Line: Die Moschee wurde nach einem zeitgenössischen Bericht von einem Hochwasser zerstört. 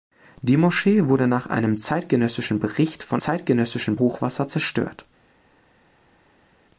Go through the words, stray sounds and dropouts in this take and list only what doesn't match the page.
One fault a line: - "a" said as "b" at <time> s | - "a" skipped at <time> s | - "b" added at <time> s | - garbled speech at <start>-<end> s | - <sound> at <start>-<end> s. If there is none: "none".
- "einem" said as "zeitgenössischen" at 3.1 s